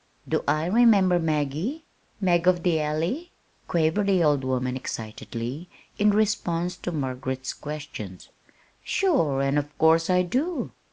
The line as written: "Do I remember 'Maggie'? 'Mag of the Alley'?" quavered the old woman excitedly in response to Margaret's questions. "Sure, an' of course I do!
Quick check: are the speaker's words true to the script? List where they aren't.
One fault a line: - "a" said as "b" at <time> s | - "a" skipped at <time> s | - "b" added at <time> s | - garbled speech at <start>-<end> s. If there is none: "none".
none